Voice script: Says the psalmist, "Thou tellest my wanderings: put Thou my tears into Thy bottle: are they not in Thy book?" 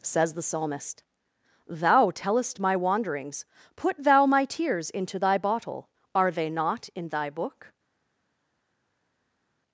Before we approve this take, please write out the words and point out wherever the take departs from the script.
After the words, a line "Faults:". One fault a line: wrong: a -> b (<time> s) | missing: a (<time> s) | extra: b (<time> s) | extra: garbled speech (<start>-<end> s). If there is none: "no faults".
Says the psalmist, "Thou tellest my wanderings: put Thou my tears into Thy bottle: are they not in Thy book?"
Faults:
no faults